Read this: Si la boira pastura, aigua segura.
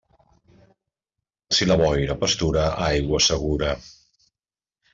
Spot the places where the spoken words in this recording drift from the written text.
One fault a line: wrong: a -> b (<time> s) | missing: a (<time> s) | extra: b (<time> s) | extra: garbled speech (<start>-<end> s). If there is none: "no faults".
no faults